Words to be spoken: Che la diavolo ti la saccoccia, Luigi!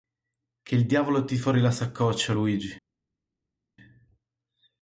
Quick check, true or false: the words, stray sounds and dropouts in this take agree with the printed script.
false